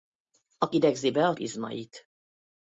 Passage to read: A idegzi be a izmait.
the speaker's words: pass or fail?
pass